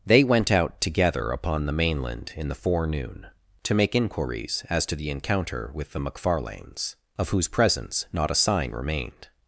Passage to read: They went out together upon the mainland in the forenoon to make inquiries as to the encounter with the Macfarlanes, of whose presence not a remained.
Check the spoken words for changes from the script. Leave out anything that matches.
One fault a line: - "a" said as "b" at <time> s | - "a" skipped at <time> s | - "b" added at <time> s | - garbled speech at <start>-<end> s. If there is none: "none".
- "sign" added at 8.4 s